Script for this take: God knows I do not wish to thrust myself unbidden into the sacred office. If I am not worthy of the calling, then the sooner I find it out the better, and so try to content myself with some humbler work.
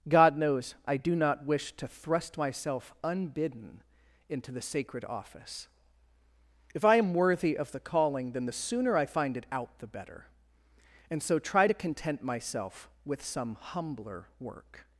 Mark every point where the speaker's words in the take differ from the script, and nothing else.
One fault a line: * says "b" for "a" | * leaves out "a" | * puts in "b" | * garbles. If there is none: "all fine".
* leaves out "not"